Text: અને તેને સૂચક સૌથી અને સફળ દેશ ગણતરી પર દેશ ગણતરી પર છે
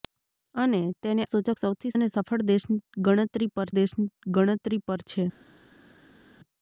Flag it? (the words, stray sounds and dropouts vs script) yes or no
no